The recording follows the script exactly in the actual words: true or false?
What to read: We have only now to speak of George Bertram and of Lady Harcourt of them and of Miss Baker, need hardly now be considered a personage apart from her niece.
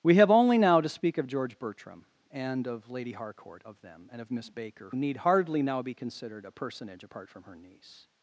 true